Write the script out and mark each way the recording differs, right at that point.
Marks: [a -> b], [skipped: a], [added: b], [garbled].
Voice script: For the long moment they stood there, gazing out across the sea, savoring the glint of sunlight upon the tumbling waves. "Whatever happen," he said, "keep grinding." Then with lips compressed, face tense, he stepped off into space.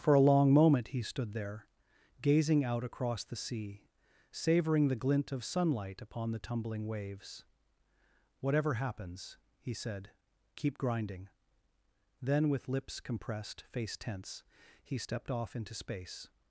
For [the -> a] long moment [they -> he] stood there, gazing out across the sea, savoring the glint of sunlight upon the tumbling waves. "Whatever [happen," -> happens] he said, "keep grinding." Then with lips compressed, face tense, he stepped off into space.